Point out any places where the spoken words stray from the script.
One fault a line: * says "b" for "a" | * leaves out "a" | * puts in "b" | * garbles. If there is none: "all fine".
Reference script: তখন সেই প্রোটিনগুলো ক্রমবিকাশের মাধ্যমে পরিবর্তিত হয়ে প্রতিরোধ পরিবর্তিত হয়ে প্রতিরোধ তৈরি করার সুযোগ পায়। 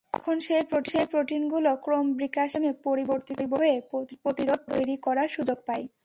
* leaves out "পরিবর্তিত হয়ে প্রতিরোধ"